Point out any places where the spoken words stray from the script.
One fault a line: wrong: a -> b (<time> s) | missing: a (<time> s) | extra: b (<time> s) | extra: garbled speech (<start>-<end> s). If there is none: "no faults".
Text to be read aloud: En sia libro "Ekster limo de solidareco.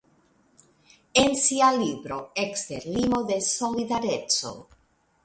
no faults